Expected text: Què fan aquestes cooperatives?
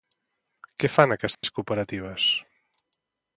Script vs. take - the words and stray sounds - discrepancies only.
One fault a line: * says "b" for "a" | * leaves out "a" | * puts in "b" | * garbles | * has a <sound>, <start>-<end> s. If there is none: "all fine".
* has a dropout, 1.3-1.4 s